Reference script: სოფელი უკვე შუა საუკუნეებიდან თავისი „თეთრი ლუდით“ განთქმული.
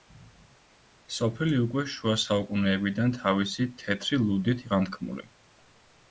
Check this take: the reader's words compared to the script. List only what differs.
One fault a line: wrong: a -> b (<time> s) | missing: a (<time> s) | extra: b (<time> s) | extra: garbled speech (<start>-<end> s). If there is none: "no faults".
no faults